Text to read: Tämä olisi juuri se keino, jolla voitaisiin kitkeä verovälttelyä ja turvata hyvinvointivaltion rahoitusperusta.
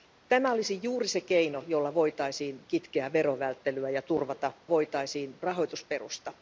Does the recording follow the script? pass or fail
fail